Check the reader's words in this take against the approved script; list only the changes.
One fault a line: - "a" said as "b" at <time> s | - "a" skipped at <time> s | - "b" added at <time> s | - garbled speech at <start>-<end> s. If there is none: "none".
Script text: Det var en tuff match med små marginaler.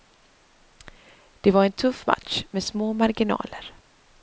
none